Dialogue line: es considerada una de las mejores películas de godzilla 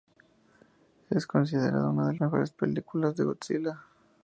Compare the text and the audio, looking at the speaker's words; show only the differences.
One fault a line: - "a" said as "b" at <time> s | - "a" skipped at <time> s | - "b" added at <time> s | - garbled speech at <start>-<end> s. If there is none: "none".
- "las" skipped at 2.1 s